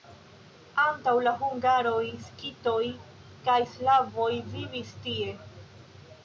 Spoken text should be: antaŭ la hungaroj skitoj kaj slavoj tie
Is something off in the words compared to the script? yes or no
yes